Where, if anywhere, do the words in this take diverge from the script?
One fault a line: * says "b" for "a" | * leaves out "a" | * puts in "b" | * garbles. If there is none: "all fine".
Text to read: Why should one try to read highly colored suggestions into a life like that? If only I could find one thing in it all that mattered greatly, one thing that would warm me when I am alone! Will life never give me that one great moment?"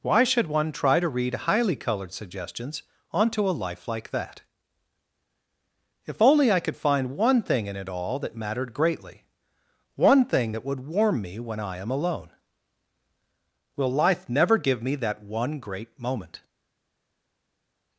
* says "onto" for "into"